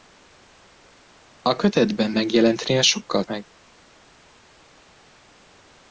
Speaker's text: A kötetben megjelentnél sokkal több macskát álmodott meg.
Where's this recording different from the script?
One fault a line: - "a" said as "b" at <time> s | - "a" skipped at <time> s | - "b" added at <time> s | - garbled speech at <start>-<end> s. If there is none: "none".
- "több macskát álmodott" skipped at 3.2 s